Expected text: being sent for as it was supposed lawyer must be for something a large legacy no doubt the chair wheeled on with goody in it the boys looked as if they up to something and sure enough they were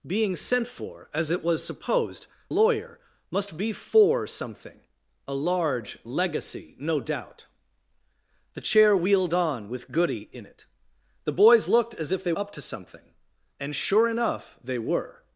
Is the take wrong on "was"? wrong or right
right